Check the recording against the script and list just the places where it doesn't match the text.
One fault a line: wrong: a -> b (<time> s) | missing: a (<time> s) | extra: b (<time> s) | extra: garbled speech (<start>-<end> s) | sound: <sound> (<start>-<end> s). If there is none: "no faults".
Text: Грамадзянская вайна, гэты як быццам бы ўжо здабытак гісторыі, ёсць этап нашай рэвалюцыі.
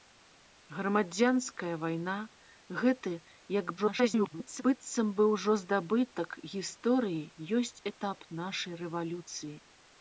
extra: garbled speech (3.8-4.6 s)